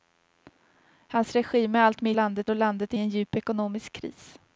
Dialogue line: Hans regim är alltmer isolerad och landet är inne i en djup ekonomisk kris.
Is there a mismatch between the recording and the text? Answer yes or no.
yes